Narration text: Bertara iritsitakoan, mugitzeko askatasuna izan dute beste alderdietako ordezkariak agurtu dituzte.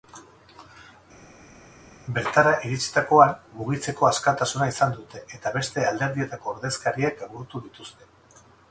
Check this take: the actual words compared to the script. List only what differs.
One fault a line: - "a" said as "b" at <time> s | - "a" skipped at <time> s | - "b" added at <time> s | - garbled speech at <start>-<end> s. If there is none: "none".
- "eta" added at 5.4 s